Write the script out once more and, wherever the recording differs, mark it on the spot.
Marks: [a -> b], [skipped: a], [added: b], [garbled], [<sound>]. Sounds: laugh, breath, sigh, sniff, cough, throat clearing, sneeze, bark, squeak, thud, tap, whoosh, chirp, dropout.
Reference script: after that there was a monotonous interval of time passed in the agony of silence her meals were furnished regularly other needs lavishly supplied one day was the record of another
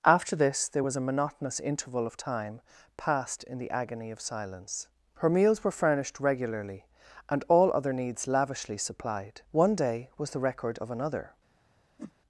after [that -> this] there was a monotonous interval of time passed in the agony of silence her meals were furnished regularly [added: and all] other needs lavishly supplied one day was the record of another [whoosh]